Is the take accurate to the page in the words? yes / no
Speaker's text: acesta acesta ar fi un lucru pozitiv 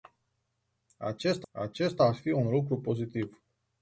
yes